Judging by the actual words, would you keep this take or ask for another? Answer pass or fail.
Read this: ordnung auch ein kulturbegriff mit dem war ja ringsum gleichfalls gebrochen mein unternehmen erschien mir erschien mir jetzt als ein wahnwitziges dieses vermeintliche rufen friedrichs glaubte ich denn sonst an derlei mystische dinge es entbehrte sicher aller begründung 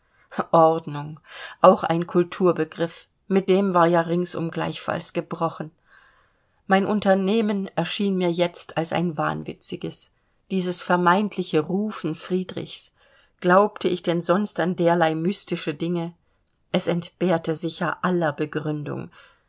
fail